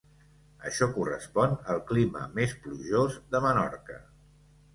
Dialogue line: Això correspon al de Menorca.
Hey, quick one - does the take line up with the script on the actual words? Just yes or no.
no